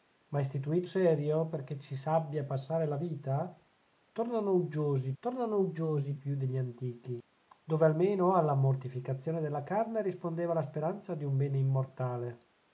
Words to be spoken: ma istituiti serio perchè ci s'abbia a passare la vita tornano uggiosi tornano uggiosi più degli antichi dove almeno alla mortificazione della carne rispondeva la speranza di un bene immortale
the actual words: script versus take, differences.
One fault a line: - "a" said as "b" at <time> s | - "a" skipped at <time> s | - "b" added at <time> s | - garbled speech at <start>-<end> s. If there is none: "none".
none